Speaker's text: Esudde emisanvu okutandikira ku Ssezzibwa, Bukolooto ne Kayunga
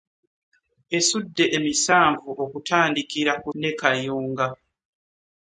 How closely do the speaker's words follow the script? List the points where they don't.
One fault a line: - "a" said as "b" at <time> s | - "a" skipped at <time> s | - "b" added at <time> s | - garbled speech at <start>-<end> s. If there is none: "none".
- "Ssezzibwa Bukolooto" skipped at 3.5 s